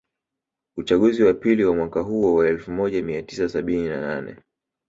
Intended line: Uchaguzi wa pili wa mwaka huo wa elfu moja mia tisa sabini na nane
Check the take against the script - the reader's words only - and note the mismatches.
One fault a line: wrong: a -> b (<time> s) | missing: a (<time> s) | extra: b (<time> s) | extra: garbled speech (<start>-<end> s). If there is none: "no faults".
no faults